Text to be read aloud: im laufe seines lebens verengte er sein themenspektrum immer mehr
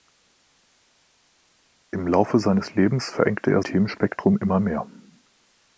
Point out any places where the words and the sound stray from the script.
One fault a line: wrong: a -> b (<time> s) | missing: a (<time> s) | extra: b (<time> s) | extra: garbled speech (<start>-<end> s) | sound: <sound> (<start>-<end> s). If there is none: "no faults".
missing: sein (3.6 s)